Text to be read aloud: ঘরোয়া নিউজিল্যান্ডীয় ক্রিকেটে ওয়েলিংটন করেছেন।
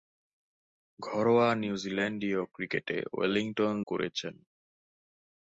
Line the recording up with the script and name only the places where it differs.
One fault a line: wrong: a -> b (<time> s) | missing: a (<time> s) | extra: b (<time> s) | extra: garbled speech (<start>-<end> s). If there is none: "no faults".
no faults